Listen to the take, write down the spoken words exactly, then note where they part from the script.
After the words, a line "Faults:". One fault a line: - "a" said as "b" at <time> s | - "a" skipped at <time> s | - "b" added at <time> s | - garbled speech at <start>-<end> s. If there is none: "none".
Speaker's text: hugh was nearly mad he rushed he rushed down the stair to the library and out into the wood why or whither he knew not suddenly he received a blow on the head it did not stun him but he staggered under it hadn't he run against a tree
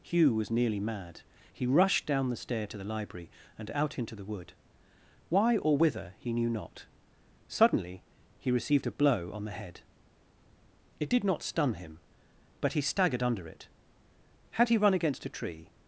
hugh was nearly mad he rushed down the stair to the library and out into the wood why or whither he knew not suddenly he received a blow on the head it did not stun him but he staggered under it had he run against a tree
Faults:
- "he rushed" skipped at 2.0 s
- "hadn't" said as "had" at 14.5 s